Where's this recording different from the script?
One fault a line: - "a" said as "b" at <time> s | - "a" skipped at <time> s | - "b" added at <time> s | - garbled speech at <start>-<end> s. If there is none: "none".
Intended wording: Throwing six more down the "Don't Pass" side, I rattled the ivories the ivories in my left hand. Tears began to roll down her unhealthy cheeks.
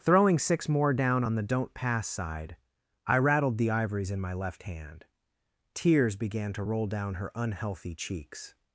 - "on" added at 1.2 s
- "the ivories" skipped at 4.1 s